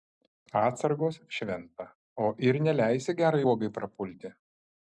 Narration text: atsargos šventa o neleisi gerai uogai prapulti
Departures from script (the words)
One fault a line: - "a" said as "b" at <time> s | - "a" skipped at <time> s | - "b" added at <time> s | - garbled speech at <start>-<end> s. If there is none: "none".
- "ir" added at 2.5 s